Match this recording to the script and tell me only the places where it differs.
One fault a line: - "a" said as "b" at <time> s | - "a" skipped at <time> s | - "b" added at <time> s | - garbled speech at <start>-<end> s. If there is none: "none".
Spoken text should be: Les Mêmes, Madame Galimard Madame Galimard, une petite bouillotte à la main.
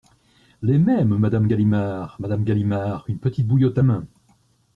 - "la" skipped at 3.8 s